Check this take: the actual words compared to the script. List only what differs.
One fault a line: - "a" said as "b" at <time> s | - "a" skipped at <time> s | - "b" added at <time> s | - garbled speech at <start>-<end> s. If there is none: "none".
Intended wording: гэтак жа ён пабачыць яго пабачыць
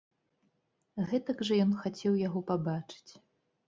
- "пабачыць" said as "хацеў" at 1.9 s